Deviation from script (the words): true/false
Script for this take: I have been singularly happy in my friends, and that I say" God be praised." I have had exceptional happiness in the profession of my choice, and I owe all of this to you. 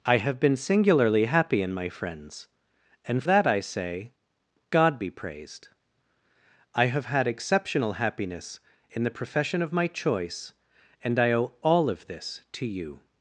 false